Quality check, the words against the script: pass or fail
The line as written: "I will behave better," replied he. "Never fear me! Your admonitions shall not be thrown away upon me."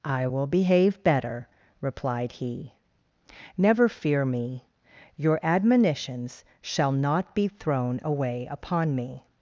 pass